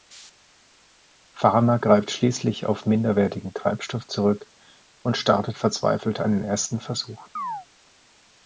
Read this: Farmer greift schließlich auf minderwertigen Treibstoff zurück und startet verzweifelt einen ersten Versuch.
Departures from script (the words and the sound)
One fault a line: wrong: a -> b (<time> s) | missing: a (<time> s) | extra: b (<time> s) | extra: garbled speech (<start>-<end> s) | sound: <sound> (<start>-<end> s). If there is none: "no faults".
sound: chirp (7.4-7.7 s)